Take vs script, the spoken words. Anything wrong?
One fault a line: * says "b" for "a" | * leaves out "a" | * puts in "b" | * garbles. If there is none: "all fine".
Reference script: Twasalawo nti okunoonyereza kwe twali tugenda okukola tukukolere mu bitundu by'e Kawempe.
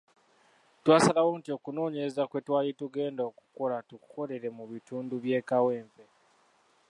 all fine